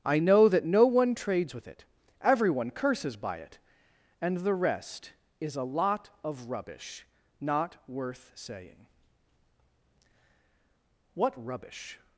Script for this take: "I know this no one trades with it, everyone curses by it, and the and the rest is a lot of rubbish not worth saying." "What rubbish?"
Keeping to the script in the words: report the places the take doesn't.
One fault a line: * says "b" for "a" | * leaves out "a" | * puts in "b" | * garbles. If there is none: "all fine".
* says "that" for "this"
* leaves out "and the"